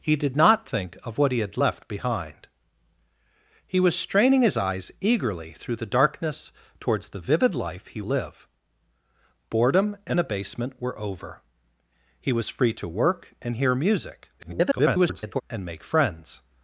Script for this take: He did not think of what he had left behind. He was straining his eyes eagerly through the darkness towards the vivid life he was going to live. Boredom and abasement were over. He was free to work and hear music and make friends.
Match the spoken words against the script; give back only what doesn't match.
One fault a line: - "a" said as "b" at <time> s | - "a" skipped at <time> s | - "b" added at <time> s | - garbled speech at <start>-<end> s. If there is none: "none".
- "was going to" skipped at 8.0 s
- garbled speech at 14.4-15.4 s